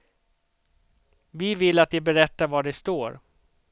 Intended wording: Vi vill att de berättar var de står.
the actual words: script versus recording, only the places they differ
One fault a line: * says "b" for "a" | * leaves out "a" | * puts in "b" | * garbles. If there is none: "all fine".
all fine